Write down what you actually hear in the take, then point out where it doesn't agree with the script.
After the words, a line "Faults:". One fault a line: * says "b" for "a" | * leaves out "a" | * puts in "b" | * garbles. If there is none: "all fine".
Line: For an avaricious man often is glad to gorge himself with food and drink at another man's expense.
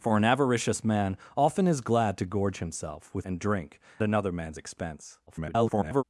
For an avaricious man often is glad to gorge himself with and drink another man's expense. [garbled]
Faults:
* leaves out "food"
* leaves out "at"
* garbles